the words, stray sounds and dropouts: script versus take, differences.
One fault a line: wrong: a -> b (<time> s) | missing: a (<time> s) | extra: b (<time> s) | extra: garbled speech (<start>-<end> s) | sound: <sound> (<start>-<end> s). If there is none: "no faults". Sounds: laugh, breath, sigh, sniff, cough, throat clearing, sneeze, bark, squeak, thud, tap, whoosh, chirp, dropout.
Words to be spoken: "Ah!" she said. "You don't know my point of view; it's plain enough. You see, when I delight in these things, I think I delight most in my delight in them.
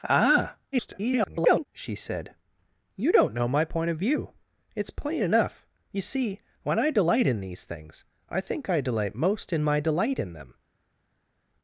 extra: garbled speech (0.7-1.7 s)